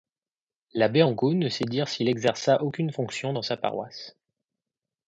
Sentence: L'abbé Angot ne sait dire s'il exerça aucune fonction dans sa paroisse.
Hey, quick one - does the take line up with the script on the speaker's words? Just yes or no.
yes